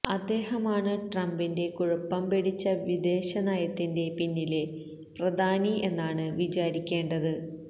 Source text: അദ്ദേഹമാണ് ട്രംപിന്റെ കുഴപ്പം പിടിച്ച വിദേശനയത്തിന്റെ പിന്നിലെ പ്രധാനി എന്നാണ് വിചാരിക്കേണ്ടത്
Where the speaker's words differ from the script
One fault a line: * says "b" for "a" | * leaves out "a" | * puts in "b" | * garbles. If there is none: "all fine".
all fine